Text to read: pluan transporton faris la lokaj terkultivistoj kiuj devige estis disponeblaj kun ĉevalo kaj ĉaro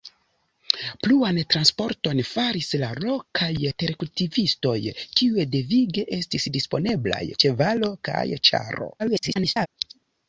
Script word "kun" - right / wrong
wrong